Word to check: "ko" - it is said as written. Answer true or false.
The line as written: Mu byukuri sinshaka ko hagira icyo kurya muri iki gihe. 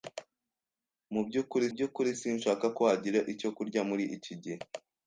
true